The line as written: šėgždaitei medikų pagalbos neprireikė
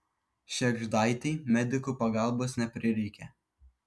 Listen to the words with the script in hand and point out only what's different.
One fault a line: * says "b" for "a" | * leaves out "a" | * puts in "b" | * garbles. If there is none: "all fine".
all fine